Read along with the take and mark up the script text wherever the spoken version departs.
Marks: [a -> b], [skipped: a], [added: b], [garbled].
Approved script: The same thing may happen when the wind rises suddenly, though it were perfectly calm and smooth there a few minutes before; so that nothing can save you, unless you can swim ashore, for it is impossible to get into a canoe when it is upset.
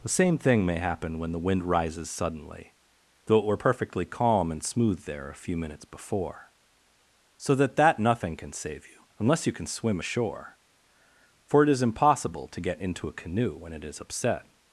The same thing may happen when the wind rises suddenly, though it were perfectly calm and smooth there a few minutes before; so that [added: that] nothing can save you, unless you can swim ashore, for it is impossible to get into a canoe when it is upset.